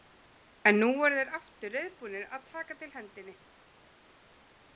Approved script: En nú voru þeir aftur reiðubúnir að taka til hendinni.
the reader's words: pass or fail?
pass